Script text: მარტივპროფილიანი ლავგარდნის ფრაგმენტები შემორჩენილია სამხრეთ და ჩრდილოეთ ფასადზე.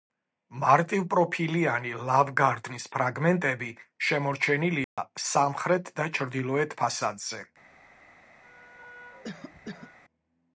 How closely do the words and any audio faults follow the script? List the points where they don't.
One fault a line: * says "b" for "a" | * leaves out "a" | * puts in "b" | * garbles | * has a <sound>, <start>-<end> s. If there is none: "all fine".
* has a dropout, 4.8-5.0 s
* has a cough, 8.4-10.0 s